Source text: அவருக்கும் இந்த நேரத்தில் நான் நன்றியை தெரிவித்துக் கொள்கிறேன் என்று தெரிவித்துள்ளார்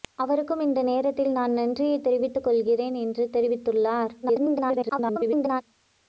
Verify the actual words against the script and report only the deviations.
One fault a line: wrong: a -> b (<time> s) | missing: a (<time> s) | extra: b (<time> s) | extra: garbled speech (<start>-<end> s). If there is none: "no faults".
extra: garbled speech (4.2-5.6 s)